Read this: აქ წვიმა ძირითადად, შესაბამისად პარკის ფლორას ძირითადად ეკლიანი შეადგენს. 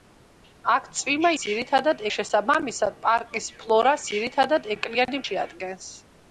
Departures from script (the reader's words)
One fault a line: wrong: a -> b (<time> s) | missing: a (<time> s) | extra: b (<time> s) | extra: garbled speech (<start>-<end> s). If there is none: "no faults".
no faults